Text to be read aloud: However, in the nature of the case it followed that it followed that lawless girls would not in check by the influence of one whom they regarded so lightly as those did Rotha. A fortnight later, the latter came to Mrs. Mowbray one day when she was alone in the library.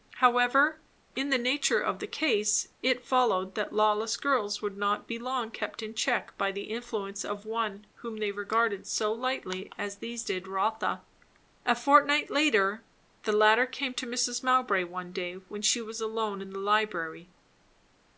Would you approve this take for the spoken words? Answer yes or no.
no